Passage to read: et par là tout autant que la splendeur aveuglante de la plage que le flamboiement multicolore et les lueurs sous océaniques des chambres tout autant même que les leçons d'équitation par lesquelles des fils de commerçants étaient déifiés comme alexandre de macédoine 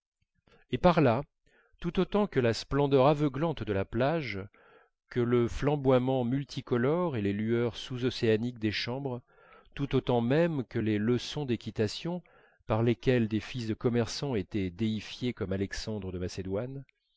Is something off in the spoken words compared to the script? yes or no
no